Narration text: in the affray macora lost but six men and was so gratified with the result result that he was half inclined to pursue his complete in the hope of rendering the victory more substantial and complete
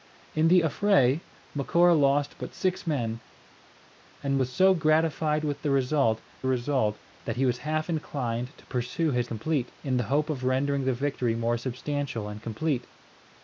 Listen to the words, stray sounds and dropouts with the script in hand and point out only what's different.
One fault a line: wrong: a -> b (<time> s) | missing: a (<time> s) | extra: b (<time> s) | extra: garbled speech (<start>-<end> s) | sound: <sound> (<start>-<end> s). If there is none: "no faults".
no faults